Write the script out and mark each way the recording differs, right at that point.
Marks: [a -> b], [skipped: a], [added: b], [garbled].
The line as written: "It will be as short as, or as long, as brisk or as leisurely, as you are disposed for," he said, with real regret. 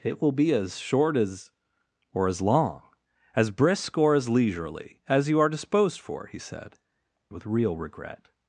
"It will be as short as, or as long, as brisk or as leisurely, as you are disposed for," he said, with real regret.